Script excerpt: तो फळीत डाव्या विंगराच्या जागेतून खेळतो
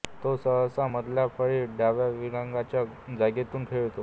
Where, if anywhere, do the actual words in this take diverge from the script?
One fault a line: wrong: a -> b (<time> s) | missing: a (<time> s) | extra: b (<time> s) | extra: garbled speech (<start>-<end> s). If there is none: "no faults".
extra: सहसा मधल्या (0.4 s)